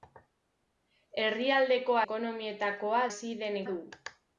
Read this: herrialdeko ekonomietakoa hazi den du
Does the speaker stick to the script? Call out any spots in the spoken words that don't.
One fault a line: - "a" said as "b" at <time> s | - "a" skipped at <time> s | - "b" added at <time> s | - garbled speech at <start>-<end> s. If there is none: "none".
none